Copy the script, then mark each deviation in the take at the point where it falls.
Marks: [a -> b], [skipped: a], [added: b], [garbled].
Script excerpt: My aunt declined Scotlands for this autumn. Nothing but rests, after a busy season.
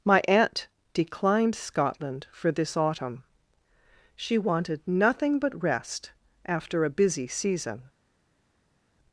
My aunt declined [Scotlands -> Scotland] for this autumn. [added: She wanted] Nothing but [rests, -> rest] after a busy season.